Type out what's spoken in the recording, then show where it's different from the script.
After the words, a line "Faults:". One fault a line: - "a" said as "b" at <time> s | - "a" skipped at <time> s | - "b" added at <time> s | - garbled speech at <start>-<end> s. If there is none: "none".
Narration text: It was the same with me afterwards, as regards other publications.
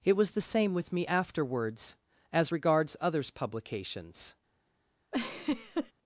It was the same with me afterwards, as regards others publications.
Faults:
- "other" said as "others" at 3.0 s